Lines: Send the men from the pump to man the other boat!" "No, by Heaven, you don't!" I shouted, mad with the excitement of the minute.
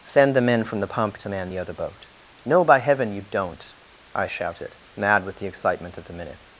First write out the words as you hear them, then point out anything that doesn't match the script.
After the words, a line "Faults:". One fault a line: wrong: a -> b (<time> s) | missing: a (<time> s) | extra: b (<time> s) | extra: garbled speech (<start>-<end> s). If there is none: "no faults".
Send the men from the pump to man the other boat!" "No, by Heaven, you don't!" I shouted, mad with the excitement of the minute.
Faults:
no faults